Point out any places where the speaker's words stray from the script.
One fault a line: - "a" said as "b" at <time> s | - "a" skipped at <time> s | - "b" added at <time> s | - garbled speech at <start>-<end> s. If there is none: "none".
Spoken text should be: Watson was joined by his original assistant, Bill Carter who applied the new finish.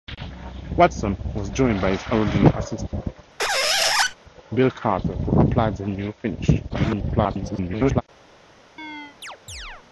- garbled speech at 6.7-8.0 s